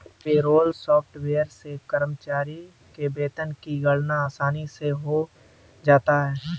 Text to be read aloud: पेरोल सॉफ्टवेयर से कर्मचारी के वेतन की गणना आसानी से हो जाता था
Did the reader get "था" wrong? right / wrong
wrong